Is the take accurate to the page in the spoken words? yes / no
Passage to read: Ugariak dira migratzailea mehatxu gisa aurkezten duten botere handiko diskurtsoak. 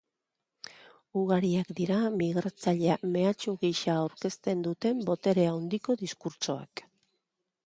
yes